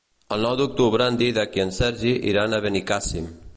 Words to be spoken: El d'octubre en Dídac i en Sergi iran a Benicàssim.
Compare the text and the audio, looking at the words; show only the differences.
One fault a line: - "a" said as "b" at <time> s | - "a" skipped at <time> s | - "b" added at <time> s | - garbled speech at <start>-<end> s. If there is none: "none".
- "nou" added at 0.5 s